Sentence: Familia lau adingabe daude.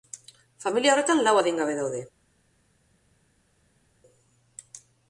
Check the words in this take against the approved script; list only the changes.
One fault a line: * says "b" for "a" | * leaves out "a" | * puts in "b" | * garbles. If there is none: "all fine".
* puts in "horretan"